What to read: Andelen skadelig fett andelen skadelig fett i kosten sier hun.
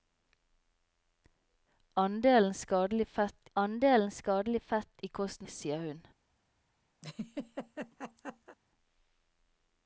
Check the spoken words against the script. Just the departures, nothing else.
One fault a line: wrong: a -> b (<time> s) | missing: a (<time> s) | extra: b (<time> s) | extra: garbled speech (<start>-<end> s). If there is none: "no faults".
no faults